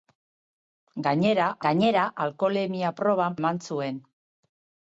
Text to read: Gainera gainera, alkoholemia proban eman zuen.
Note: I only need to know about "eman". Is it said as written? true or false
true